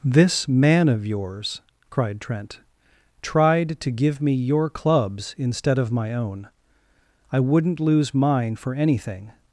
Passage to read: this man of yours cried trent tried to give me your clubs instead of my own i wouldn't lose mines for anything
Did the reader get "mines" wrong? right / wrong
wrong